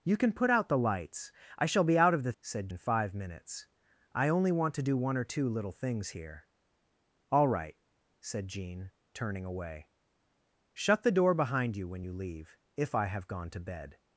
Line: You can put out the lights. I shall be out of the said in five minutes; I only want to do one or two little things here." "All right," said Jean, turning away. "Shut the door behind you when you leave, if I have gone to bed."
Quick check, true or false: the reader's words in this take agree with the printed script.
true